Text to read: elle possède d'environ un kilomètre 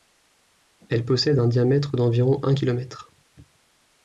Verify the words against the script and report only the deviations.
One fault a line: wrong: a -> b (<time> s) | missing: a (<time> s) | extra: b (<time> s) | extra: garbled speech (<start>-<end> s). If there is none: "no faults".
extra: un diamètre (1.4 s)